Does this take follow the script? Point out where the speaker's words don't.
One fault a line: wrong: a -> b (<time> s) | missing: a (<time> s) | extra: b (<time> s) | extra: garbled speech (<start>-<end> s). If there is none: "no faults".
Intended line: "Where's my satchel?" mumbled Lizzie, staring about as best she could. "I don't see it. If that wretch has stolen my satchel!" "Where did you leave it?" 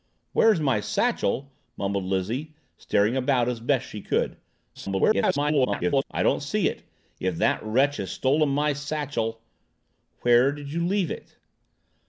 extra: garbled speech (4.7-6.0 s)